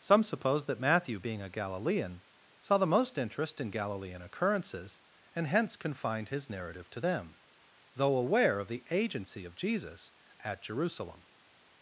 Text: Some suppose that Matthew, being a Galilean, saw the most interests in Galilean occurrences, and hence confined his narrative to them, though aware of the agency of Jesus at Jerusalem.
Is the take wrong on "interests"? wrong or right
wrong